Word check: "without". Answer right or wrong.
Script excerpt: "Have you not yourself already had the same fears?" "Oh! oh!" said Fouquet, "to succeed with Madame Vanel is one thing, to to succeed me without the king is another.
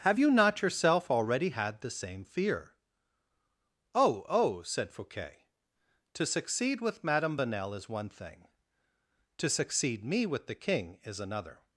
wrong